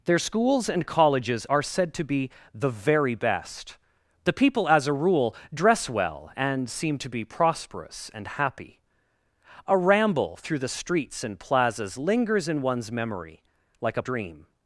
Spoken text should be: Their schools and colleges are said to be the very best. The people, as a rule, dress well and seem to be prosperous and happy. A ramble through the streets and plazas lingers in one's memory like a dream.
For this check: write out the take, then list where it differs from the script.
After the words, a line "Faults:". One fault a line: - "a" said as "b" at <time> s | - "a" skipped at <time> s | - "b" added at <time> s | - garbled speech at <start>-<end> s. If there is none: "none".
Their schools and colleges are said to be the very best. The people, as a rule, dress well and seem to be prosperous and happy. A ramble through the streets and plazas lingers in one's memory like a dream.
Faults:
none